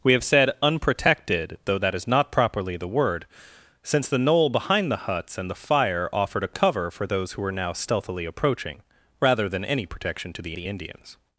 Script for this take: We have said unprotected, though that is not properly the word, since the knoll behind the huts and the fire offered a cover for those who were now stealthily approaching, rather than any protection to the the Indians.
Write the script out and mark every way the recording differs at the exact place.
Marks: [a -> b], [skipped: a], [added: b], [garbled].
We have said unprotected, though that is not properly the word, since the knoll behind the huts and the fire offered a cover for those who were now stealthily approaching, rather than any protection to the the Indians.